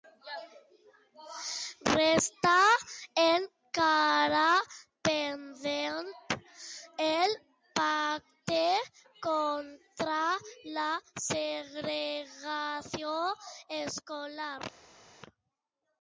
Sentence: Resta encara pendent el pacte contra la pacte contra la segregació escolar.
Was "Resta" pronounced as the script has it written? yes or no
yes